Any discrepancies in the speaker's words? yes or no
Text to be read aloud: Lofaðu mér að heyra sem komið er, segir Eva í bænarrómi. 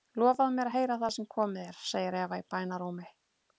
yes